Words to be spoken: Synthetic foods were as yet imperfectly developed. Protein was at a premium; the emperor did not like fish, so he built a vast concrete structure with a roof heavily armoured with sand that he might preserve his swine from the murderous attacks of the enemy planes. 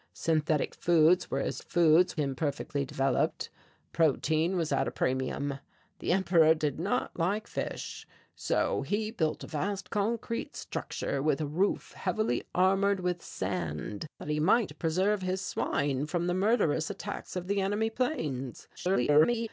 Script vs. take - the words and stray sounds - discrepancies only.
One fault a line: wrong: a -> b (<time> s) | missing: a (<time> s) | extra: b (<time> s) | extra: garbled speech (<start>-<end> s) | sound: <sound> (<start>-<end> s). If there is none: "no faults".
wrong: yet -> foods (1.6 s)
extra: garbled speech (18.8-19.5 s)